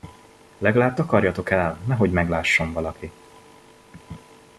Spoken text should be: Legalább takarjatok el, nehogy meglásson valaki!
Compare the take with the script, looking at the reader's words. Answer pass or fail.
pass